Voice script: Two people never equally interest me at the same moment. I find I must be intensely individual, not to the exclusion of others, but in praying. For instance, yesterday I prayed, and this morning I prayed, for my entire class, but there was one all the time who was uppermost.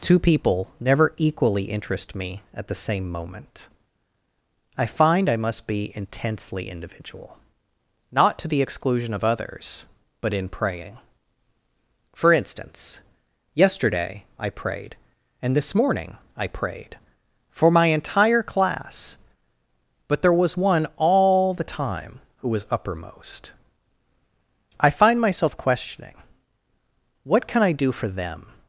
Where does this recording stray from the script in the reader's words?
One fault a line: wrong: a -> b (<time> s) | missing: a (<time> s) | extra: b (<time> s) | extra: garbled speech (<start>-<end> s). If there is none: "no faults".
extra: I find myself questioning What can I do for them (24.8 s)